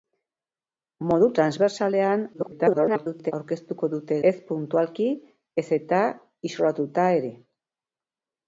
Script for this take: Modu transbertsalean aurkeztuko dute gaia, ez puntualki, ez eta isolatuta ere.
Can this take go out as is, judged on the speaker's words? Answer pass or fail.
fail